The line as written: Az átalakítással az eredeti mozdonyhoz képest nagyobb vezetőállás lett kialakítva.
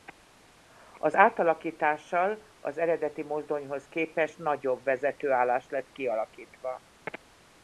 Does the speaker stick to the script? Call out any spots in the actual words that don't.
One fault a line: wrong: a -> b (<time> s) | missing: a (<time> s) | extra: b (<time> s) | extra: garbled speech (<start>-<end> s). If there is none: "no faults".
no faults